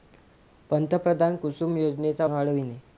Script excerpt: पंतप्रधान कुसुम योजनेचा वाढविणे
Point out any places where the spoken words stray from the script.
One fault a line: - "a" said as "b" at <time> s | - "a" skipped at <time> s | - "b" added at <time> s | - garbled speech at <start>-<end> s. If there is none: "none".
none